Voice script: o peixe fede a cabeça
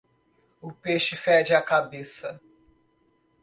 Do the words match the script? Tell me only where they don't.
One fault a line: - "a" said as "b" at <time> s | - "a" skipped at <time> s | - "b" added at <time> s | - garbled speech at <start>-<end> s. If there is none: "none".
none